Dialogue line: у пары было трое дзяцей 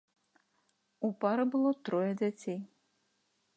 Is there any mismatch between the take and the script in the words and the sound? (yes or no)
no